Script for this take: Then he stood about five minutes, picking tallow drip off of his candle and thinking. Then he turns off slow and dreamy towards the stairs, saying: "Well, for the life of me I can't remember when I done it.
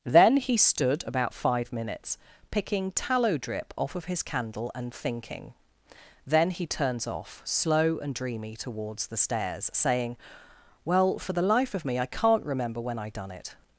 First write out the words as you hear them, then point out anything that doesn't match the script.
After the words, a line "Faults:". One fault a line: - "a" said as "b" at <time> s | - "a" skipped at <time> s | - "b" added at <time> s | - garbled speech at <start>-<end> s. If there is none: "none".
Then he stood about five minutes, picking tallow drip off of his candle and thinking. Then he turns off slow and dreamy towards the stairs, saying: "Well, for the life of me I can't remember when I done it.
Faults:
none